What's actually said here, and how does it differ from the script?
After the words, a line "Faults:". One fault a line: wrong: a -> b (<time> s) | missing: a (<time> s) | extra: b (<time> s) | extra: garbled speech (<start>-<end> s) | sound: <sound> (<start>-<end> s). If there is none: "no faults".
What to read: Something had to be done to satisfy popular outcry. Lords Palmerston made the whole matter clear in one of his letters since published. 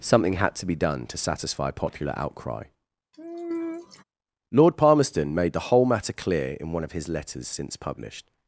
Something had to be done to satisfy popular outcry. Lord Palmerston made the whole matter clear in one of his letters since published.
Faults:
sound: sigh (3.1-4.0 s)
wrong: Lords -> Lord (4.5 s)